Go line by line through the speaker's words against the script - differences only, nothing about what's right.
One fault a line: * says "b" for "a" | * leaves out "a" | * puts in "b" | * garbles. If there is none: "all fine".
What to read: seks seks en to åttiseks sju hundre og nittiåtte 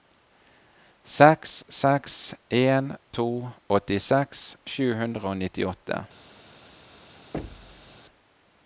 all fine